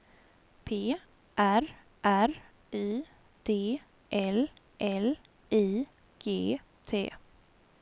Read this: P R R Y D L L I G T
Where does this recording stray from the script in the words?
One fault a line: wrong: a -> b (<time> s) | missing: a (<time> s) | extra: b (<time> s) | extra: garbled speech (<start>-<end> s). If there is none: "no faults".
no faults